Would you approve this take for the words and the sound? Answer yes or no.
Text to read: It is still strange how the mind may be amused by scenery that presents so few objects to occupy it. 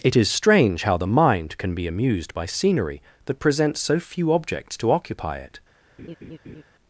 no